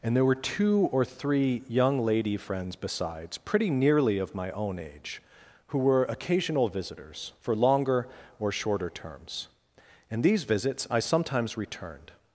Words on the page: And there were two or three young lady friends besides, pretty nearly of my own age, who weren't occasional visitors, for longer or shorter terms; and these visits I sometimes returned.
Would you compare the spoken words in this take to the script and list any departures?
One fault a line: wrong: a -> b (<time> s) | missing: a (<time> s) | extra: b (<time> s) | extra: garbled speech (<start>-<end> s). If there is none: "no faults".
wrong: weren't -> were (5.8 s)